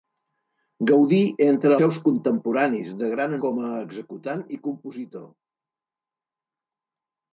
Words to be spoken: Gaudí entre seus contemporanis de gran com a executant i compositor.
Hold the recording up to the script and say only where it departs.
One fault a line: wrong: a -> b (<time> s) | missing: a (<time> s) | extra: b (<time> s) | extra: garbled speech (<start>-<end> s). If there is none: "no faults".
no faults